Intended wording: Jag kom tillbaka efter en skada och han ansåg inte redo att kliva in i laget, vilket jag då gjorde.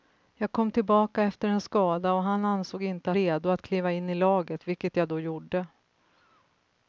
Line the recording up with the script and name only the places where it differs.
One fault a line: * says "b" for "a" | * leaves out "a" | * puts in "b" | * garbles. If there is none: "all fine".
all fine